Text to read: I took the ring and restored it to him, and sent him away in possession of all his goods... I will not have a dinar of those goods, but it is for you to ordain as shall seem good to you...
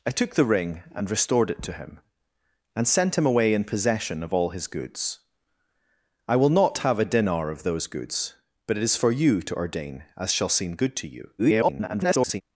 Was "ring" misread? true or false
false